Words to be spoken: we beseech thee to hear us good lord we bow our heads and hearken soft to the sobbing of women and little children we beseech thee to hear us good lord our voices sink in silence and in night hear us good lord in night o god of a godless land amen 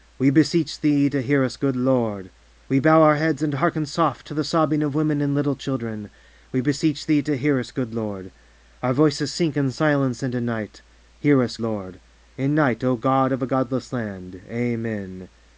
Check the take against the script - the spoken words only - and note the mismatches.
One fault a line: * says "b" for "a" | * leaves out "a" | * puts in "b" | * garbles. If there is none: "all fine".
* leaves out "good"